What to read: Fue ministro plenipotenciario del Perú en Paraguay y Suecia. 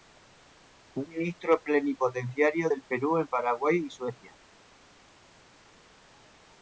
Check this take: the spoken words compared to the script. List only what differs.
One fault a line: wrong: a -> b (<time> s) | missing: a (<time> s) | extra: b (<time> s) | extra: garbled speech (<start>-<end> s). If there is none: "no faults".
no faults